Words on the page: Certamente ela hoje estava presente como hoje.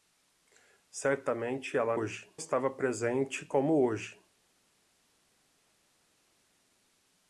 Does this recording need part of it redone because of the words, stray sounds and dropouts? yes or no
no